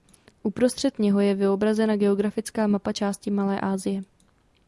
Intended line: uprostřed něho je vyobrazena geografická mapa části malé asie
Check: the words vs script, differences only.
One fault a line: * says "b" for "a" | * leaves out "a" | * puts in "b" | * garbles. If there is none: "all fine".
all fine